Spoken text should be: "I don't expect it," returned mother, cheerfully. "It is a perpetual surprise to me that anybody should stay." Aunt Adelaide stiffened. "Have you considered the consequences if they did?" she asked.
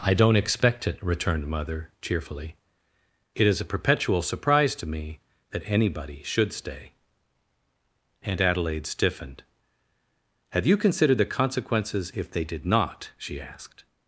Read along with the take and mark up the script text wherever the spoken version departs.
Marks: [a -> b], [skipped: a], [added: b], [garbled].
"I don't expect it," returned mother, cheerfully. "It is a perpetual surprise to me that anybody should stay." Aunt Adelaide stiffened. "Have you considered the consequences if they did?" [added: not] she asked.